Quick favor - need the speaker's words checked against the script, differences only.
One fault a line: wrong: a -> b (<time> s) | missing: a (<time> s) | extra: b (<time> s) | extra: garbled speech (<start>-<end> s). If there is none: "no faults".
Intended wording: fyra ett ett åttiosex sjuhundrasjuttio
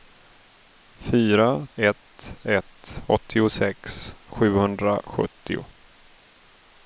no faults